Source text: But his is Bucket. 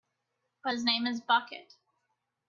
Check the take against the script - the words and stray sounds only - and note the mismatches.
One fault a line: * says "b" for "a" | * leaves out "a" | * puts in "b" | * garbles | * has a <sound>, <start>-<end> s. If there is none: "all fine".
* puts in "name"